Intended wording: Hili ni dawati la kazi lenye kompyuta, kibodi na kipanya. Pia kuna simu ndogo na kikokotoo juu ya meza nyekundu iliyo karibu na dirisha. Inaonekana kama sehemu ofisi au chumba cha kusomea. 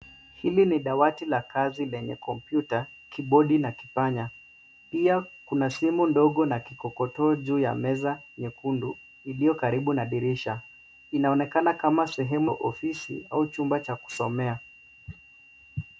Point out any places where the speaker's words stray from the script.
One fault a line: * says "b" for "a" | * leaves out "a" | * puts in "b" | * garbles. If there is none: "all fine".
all fine